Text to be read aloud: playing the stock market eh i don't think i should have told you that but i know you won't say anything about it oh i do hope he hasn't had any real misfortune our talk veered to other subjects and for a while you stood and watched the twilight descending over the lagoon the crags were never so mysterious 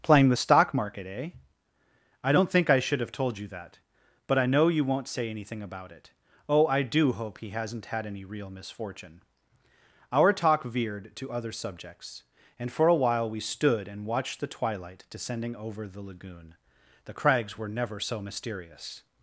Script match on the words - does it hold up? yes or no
no